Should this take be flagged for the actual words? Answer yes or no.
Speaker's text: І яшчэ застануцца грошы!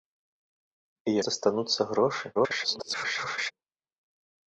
yes